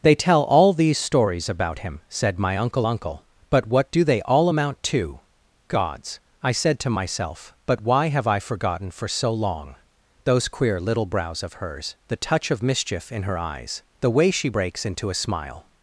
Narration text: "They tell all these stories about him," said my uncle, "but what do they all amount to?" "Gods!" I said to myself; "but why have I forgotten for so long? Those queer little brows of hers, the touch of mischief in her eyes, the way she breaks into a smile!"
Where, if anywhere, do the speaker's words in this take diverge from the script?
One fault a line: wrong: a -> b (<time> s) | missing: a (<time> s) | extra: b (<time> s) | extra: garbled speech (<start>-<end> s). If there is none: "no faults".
extra: uncle (2.8 s)